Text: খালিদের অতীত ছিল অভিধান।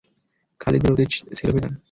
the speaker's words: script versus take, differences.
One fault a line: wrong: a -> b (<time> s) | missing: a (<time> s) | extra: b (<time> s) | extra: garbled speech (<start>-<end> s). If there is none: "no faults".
no faults